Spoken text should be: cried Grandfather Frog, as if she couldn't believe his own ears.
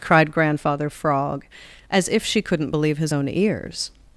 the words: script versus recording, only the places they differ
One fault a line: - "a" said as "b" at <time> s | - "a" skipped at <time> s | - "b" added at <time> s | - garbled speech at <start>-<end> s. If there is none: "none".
none